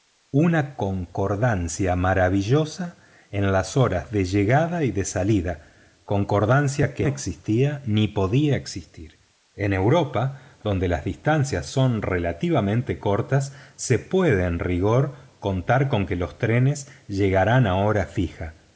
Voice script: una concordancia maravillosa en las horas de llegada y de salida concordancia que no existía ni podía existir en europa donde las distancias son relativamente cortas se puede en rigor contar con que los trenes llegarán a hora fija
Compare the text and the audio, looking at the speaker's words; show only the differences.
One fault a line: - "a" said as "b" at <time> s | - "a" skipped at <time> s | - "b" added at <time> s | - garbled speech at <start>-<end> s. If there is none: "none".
- "no" skipped at 7.1 s